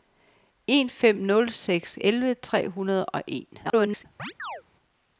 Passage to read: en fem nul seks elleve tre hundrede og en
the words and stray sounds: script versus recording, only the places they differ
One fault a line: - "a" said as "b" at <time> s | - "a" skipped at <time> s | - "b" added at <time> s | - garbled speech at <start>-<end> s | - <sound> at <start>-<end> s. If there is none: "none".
- garbled speech at 3.6-4.1 s
- chirp at 4.2-4.6 s